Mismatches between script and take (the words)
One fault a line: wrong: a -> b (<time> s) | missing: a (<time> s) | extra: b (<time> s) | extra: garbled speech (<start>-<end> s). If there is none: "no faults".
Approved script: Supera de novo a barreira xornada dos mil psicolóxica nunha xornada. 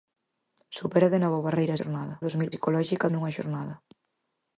no faults